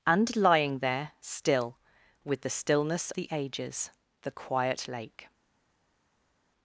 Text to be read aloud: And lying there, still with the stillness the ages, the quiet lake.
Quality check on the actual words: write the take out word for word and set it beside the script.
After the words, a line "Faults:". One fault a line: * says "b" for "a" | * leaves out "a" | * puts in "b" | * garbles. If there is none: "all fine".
And lying there, still with the stillness the ages, the quiet lake.
Faults:
all fine